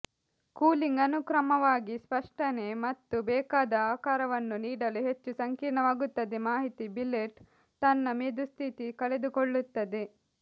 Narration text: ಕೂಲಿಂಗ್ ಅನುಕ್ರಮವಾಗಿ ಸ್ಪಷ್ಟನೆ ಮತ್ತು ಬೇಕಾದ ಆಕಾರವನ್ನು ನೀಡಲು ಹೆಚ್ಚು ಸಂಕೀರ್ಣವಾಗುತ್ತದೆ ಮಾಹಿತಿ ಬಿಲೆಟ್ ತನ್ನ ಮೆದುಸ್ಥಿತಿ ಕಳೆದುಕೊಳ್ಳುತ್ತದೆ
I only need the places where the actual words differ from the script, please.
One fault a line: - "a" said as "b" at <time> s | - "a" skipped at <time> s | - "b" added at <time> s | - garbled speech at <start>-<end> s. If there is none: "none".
none